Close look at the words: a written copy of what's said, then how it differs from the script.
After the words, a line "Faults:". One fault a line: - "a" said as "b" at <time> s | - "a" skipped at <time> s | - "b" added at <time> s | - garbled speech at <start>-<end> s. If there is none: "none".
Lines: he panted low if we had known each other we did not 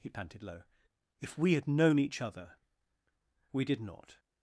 he panted low if we had known each other we did not
Faults:
none